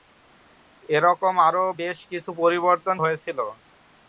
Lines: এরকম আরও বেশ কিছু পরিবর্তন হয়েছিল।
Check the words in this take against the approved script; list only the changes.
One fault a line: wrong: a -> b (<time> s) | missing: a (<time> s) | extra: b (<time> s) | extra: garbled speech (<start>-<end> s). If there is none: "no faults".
no faults